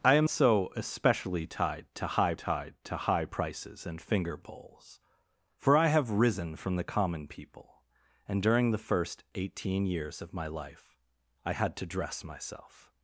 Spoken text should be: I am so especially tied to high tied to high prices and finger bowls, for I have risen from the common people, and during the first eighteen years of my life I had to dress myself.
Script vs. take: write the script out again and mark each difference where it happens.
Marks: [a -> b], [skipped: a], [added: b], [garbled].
I am so especially tied to high tied to high prices and finger bowls, for I have risen from the common people, and during the first eighteen years of my life I had to dress myself.